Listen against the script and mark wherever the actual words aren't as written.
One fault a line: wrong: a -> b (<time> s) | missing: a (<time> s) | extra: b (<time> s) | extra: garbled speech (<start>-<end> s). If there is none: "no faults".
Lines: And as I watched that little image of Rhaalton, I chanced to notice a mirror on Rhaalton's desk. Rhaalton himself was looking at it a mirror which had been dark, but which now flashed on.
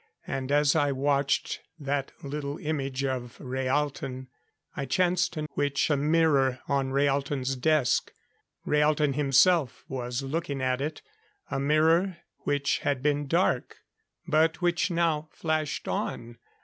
wrong: notice -> which (5.5 s)